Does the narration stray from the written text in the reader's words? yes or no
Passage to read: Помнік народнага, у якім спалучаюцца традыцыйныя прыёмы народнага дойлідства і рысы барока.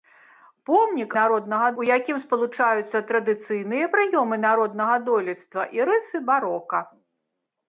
no